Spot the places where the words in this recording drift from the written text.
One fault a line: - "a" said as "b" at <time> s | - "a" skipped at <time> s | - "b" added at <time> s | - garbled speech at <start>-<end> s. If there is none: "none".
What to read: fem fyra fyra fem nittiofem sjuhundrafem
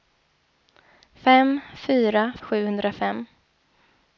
- "fyra fem nittiofem" skipped at 2.2 s